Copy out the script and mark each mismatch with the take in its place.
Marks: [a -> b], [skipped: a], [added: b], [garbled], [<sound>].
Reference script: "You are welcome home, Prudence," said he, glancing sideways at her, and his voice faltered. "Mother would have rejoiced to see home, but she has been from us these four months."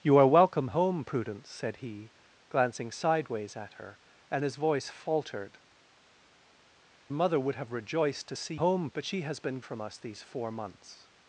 "You are welcome home, Prudence," said he, glancing sideways at her, and his voice faltered. "Mother would have rejoiced to see home, but she has been from us these four months."